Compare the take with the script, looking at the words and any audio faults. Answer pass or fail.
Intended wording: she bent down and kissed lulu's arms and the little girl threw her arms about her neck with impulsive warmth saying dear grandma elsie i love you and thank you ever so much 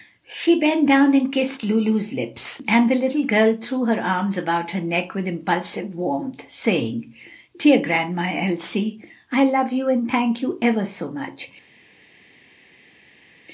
fail